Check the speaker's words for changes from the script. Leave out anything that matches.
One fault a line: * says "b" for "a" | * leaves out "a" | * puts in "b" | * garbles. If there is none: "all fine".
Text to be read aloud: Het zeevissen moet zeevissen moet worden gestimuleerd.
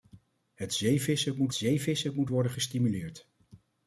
all fine